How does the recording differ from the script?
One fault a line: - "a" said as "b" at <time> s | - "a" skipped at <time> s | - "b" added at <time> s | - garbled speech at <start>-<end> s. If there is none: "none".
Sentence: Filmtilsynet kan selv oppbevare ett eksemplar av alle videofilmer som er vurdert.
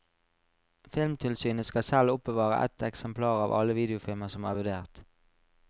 - "kan" said as "skal" at 1.6 s